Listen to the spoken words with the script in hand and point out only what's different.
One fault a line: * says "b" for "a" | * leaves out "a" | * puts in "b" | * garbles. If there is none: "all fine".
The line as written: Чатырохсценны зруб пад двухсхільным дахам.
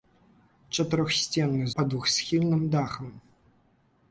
* leaves out "зруб"